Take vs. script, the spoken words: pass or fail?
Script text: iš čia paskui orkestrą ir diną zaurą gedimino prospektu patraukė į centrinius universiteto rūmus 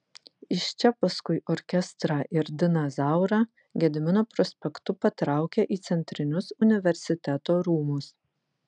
pass